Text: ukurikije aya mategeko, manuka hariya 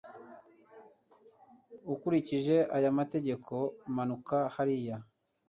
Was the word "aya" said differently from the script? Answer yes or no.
no